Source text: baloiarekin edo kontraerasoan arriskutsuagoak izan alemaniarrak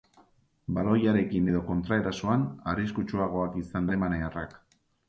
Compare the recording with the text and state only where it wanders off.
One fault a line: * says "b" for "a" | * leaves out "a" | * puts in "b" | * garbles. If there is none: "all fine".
all fine